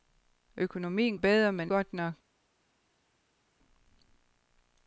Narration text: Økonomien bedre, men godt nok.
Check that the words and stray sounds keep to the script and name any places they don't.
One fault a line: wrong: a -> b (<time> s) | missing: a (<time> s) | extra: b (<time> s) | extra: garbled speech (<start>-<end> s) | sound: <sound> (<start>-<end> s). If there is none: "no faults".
no faults